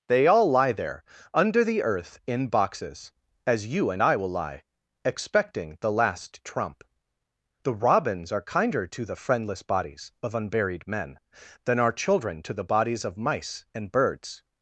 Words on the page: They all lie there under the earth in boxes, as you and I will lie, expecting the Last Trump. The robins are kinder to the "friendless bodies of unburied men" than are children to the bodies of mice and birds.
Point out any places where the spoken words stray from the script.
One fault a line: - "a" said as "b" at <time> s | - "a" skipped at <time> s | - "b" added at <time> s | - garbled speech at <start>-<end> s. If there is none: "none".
none